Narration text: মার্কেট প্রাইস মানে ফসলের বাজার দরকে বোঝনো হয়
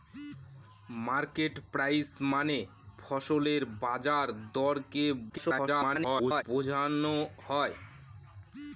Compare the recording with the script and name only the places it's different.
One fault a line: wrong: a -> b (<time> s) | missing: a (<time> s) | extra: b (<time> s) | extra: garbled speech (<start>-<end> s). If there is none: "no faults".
extra: garbled speech (5.3-6.4 s)